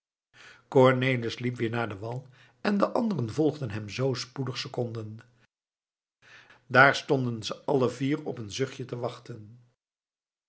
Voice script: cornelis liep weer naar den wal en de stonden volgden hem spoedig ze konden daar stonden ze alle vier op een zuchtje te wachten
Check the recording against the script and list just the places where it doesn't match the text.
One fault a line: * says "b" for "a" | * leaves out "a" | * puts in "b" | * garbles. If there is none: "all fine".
* says "anderen" for "stonden"
* puts in "zoo"